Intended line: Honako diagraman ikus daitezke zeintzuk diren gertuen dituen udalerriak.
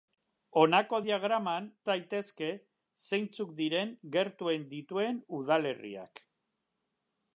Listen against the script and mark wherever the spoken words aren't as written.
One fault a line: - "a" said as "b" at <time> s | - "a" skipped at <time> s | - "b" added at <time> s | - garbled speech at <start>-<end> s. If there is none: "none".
- "ikus" skipped at 1.6 s